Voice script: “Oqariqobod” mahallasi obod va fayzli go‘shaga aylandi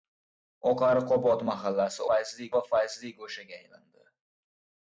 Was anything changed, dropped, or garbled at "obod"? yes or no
yes